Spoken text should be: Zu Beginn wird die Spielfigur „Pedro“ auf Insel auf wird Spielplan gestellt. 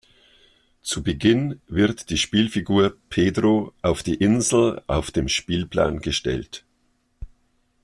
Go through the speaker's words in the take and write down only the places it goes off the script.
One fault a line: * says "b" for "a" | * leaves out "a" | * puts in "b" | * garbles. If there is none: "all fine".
* puts in "die"
* says "dem" for "wird"